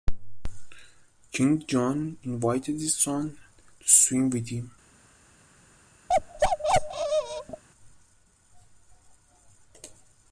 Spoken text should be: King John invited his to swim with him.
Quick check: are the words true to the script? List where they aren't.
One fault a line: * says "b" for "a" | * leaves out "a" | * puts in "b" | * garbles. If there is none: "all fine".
* puts in "son"